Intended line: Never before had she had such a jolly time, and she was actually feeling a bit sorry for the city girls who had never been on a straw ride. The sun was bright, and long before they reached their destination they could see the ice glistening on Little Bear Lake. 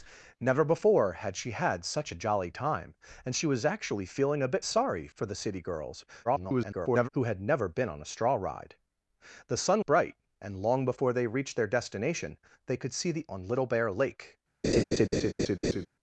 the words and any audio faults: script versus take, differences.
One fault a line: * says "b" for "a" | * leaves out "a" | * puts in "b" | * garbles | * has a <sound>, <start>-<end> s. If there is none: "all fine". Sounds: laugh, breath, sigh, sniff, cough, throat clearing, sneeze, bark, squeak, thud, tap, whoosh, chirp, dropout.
* garbles
* leaves out "was"
* leaves out "ice glistening"
* has a laugh, 14.6-15.9 s